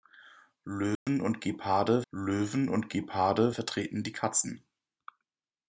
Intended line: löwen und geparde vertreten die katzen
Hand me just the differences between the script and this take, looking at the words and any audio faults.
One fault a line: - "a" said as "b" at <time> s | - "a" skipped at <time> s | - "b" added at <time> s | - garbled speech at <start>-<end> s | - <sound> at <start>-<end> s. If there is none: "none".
- dropout at 1.0-1.1 s
- "löwen und geparde" added at 2.1 s